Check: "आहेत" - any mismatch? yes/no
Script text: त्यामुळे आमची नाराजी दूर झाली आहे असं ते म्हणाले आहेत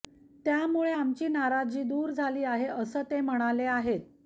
no